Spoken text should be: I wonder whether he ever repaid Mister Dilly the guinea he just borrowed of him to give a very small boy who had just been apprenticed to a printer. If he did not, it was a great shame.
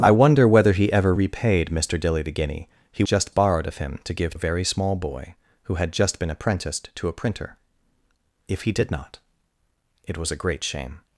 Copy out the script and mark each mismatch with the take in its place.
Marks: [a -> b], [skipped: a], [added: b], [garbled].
I wonder whether he ever repaid Mister Dilly the guinea he just borrowed of him to give a very small boy who had just been apprenticed to a printer. If he did not, it was a great shame.